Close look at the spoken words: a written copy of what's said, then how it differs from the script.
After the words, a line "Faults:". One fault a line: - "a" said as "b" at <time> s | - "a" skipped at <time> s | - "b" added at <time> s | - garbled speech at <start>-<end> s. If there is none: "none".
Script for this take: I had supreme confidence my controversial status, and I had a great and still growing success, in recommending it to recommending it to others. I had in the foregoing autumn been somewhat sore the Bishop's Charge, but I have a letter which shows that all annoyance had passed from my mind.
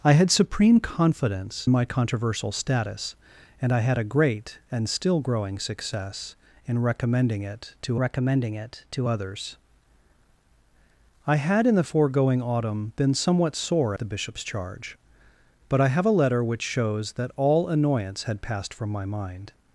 I had supreme confidence my controversial status, and I had a great and still growing success, in recommending it to recommending it to others. I had in the foregoing autumn been somewhat sore the Bishop's Charge, but I have a letter which shows that all annoyance had passed from my mind.
Faults:
none